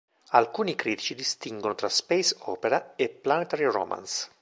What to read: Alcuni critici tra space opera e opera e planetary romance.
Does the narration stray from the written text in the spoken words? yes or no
yes